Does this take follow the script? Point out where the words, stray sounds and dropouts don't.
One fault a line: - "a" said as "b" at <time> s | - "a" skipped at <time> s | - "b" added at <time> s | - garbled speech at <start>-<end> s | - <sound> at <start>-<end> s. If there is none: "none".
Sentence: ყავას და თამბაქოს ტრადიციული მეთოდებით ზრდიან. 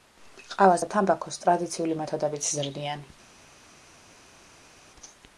none